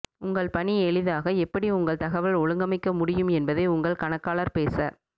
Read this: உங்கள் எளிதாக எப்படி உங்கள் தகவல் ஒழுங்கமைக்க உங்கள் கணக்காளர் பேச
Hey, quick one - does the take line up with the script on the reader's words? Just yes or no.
no